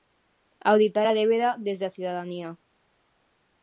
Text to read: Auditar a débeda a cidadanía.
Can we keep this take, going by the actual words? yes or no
no